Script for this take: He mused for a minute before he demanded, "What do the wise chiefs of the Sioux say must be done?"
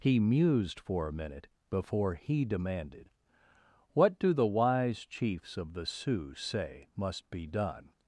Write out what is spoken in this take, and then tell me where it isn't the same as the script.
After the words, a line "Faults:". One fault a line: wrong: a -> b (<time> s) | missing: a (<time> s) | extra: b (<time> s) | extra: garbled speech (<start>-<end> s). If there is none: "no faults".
He mused for a minute before he demanded, "What do the wise chiefs of the Sioux say must be done?"
Faults:
no faults